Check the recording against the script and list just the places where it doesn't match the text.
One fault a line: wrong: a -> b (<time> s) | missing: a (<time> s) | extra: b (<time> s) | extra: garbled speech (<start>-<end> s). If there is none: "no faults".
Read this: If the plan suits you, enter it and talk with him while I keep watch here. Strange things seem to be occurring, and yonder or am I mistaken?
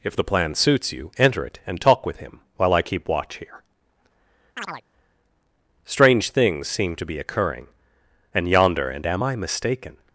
wrong: or -> and (8.9 s)